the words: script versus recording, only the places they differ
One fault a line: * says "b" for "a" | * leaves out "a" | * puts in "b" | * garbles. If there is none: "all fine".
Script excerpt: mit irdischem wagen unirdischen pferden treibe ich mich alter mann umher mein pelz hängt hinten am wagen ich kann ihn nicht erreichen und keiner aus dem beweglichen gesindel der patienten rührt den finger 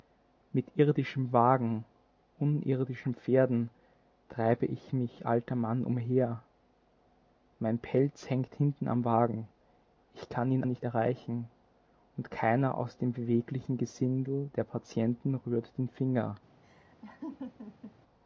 all fine